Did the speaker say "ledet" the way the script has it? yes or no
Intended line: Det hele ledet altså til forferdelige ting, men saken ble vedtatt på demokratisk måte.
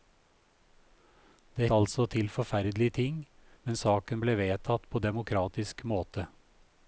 no